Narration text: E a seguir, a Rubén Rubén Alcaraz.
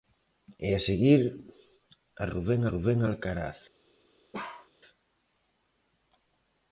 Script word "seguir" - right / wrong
right